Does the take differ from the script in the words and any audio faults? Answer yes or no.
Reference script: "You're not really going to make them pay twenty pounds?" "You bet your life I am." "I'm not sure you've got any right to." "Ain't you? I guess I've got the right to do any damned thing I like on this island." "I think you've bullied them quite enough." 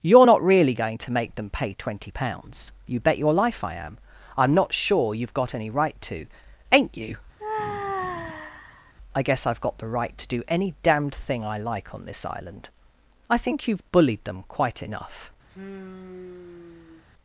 yes